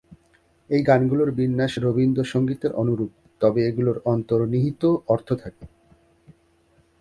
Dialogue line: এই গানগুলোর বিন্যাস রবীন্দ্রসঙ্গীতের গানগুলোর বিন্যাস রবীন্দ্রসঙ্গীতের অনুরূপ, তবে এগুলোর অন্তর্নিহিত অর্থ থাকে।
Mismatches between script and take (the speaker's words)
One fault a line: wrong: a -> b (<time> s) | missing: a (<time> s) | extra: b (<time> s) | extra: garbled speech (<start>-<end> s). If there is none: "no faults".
missing: গানগুলোর বিন্যাস রবীন্দ্রসঙ্গীতের (2.7 s)